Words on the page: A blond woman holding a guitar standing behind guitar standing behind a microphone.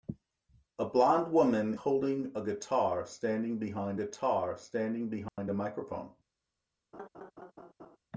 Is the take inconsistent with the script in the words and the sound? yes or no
yes